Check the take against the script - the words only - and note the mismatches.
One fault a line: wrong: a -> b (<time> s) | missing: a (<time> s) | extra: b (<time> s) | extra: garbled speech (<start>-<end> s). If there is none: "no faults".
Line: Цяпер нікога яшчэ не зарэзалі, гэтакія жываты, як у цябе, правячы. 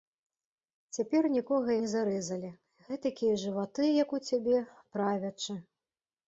missing: яшчэ (1.7 s)